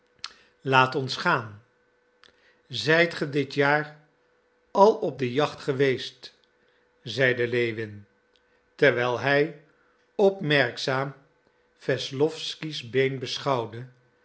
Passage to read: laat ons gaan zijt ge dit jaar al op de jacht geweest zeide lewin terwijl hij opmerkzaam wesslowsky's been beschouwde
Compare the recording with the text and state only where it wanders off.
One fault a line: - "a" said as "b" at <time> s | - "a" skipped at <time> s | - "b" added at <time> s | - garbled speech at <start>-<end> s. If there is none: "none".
none